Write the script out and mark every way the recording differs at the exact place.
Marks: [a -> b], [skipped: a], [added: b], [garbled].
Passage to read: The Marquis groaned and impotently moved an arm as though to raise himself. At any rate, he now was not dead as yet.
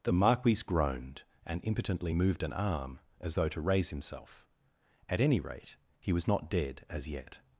The Marquis groaned and impotently moved an arm as though to raise himself. At any rate, he [skipped: now] was not dead as yet.